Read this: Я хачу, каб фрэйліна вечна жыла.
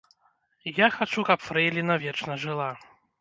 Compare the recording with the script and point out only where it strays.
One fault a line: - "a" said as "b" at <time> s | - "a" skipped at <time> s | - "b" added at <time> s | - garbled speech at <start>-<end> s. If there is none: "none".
none